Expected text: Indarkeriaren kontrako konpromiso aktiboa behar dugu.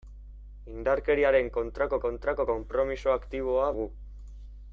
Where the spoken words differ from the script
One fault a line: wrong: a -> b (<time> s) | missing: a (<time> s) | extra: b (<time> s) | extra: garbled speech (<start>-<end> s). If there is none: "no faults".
extra: kontrako (2.0 s)
missing: behar (3.7 s)